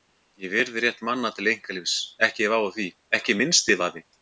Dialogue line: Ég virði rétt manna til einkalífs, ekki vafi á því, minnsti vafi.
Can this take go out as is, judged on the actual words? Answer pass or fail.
fail